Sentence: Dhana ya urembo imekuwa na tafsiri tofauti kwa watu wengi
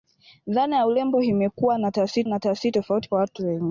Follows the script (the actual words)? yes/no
no